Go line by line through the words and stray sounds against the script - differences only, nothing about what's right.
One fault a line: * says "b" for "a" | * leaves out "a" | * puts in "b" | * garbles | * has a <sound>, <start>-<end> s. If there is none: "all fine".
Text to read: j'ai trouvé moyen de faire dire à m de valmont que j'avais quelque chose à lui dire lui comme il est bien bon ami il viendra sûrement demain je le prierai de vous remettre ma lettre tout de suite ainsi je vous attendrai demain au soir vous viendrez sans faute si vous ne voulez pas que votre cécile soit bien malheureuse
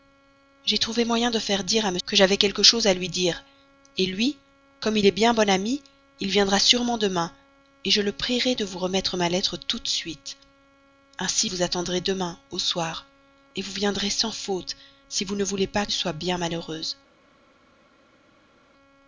* leaves out "de valmont"
* leaves out "je"
* leaves out "que votre cécile"